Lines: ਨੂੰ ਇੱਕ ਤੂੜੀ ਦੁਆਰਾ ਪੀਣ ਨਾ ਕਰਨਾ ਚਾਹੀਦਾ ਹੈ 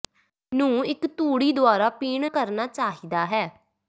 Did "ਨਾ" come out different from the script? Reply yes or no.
yes